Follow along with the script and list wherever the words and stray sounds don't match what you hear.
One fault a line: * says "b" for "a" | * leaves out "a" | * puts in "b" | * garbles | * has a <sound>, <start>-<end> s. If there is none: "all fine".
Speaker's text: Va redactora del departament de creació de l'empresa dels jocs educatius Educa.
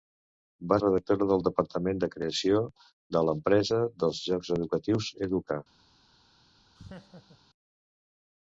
* has a laugh, 6.8-7.4 s